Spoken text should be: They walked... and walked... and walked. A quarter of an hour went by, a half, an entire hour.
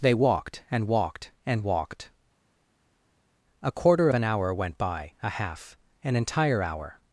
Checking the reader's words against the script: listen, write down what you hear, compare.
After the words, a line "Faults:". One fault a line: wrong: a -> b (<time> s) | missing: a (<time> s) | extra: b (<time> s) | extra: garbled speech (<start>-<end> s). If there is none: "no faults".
They walked... and walked... and walked. A quarter an hour went by, a half, an entire hour.
Faults:
missing: of (4.1 s)